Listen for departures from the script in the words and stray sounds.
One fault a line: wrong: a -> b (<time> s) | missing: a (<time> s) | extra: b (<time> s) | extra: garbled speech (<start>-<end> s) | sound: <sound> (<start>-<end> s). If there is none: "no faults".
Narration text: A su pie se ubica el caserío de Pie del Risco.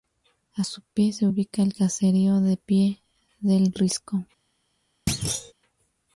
sound: thud (5.1-5.5 s)